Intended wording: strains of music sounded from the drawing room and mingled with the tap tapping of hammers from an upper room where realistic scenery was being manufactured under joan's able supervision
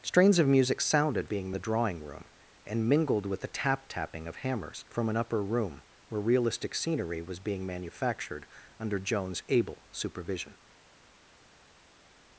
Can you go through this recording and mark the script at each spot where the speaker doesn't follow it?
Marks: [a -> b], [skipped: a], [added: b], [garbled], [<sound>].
strains of music sounded [from -> being] the drawing room and mingled with the tap tapping of hammers from an upper room where realistic scenery was being manufactured under joan's able supervision